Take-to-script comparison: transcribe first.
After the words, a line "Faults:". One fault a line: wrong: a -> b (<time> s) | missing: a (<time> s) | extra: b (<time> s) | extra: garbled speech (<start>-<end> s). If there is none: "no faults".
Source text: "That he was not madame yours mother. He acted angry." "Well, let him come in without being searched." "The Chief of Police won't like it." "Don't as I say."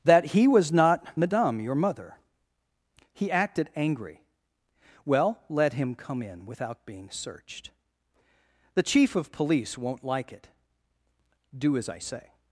"That he was not madame your mother. He acted angry." "Well, let him come in without being searched." "The Chief of Police won't like it." "Do as I say."
Faults:
wrong: yours -> your (1.6 s)
wrong: Don't -> Do (11.6 s)